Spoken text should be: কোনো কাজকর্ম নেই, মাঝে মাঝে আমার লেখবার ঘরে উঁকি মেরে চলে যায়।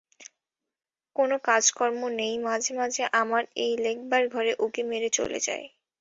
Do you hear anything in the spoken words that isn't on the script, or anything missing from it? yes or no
yes